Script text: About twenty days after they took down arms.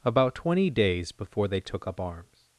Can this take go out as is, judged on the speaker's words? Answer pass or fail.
fail